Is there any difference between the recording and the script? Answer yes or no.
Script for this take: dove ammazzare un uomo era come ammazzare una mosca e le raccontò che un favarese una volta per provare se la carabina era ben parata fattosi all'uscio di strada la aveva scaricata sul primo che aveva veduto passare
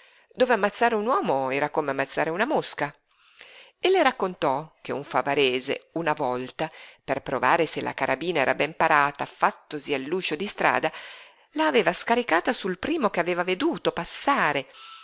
no